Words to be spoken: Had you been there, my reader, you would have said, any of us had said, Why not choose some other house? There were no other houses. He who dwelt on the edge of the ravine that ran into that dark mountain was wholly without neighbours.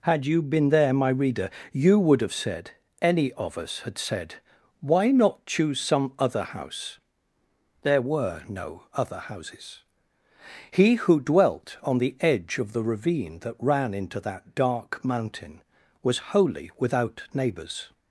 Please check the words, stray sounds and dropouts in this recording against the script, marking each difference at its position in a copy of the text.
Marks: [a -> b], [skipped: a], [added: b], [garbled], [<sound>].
Had you been there, my reader, you would have said, any of us had said, Why not choose some other house? There were no other houses. He who dwelt on the edge of the ravine that ran into that dark mountain was wholly without neighbours.